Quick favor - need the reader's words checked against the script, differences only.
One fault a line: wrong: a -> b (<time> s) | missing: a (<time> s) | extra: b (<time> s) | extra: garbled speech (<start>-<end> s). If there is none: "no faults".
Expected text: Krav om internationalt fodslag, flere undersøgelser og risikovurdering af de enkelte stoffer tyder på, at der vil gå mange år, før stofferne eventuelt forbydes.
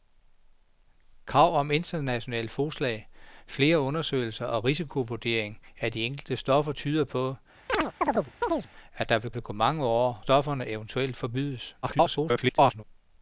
extra: vil (9.3 s)
missing: før (10.2 s)
extra: garbled speech (11.8-12.8 s)